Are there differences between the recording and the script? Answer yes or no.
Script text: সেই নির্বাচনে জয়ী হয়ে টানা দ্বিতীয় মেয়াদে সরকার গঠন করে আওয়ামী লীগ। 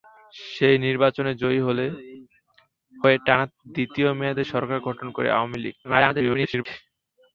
yes